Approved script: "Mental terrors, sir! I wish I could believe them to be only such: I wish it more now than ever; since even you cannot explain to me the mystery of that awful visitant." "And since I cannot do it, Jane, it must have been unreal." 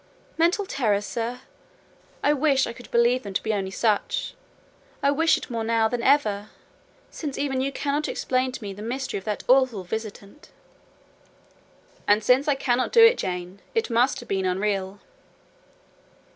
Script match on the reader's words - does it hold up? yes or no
yes